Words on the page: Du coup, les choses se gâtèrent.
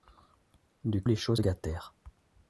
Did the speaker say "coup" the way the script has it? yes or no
no